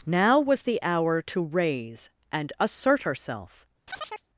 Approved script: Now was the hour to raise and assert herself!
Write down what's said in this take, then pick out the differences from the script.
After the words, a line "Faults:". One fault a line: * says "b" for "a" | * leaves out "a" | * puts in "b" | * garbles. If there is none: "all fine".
Now was the hour to raise and assert herself!
Faults:
all fine